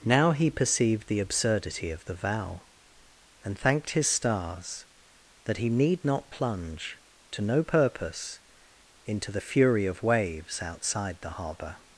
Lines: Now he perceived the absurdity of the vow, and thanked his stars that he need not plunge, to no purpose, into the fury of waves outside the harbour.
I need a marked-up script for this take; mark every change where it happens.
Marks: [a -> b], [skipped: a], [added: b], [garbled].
Now he perceived the absurdity of the vow, and thanked his stars that he need not plunge, to no purpose, into the fury of waves outside the harbour.